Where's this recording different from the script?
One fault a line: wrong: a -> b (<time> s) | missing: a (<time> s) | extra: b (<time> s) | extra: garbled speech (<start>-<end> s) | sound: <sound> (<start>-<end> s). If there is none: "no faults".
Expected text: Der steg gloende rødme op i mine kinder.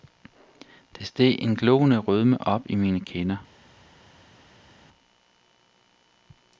extra: en (1.4 s)